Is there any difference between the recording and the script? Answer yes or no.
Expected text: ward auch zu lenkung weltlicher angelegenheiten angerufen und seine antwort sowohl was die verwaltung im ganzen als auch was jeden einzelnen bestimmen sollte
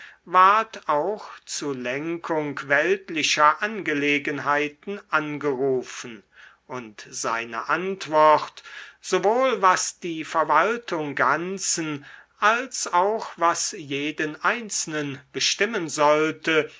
yes